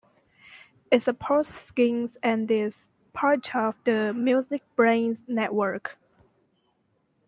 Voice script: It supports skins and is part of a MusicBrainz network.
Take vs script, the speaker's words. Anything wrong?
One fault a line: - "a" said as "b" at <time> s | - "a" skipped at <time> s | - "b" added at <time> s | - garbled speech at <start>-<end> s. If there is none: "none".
- "a" said as "the" at 3.8 s